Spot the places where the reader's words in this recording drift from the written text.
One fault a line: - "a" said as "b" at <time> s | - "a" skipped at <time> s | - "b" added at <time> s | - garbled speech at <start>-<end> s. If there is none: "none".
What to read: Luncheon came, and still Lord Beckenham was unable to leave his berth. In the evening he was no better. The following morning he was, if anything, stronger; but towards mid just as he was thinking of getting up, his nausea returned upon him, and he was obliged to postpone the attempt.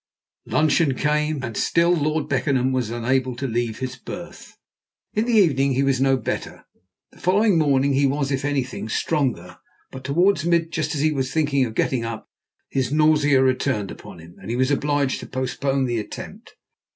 none